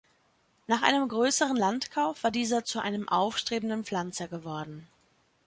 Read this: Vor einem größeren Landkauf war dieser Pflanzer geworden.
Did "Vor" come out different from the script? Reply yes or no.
yes